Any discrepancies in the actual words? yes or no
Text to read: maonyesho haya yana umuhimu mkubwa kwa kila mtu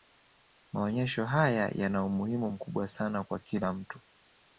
yes